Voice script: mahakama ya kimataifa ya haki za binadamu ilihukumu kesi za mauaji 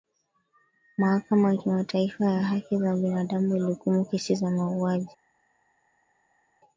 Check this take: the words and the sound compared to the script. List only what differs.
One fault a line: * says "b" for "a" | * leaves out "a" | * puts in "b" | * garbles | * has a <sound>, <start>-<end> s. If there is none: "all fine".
all fine